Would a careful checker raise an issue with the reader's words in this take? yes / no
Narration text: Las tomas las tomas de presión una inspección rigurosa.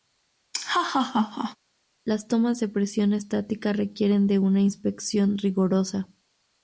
yes